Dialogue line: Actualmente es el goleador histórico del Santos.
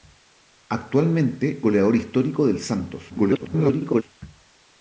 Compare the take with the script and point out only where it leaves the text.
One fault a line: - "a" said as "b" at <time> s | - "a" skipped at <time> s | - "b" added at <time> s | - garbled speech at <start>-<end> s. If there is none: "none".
- "es el" skipped at 1.6 s
- garbled speech at 3.1-4.0 s